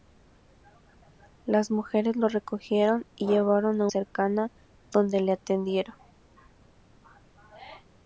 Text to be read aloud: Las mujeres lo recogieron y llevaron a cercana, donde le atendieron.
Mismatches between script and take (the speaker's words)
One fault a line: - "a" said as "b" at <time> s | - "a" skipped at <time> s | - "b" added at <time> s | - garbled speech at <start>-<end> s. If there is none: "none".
none